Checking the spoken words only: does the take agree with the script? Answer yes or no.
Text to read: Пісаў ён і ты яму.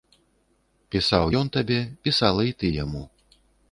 no